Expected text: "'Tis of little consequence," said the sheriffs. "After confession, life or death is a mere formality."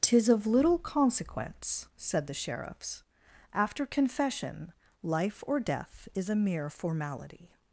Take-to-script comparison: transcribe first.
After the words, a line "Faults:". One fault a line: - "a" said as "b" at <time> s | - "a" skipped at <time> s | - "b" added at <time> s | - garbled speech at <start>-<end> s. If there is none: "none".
"'Tis of little consequence," said the sheriffs. "After confession, life or death is a mere formality."
Faults:
none